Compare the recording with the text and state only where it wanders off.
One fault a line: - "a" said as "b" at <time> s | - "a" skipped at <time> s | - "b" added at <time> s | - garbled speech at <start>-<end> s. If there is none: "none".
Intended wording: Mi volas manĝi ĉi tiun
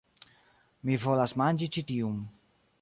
none